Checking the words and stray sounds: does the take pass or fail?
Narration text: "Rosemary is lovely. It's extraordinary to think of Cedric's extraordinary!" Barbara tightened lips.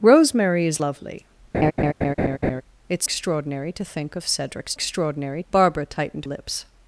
fail